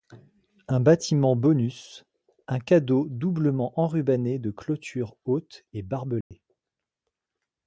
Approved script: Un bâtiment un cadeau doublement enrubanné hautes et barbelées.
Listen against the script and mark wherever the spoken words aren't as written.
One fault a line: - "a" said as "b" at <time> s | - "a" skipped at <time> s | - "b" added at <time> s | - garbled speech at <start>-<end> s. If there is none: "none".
- "bonus" added at 1.4 s
- "de clôtures" added at 4.4 s